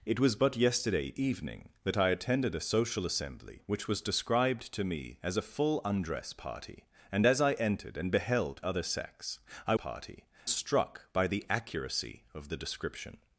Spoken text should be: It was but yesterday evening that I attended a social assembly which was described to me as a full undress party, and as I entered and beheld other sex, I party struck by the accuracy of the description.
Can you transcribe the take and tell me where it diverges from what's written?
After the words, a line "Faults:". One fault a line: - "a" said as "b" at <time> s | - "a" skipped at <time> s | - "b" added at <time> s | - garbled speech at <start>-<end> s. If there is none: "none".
It was but yesterday evening that I attended a social assembly which was described to me as a full undress party, and as I entered and beheld other sex, I party struck by the accuracy of the description.
Faults:
none